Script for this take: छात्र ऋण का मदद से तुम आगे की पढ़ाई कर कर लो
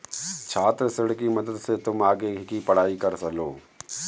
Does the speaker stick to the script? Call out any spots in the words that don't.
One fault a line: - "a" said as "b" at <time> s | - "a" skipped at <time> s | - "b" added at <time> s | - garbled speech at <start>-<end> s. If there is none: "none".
- "का" said as "की" at 1.1 s
- "कर" skipped at 3.3 s